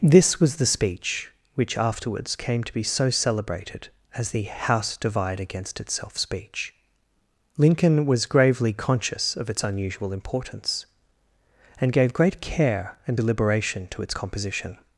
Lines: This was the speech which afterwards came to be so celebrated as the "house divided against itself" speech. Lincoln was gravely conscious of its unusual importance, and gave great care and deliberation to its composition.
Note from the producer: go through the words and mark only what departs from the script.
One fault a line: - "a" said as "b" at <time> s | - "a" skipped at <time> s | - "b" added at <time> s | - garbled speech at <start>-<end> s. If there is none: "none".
- "divided" said as "divide" at 5.0 s